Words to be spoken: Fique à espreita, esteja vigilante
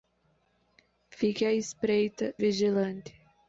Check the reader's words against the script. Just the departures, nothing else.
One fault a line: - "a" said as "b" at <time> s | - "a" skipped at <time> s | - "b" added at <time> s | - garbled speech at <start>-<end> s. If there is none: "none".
- "esteja" skipped at 2.3 s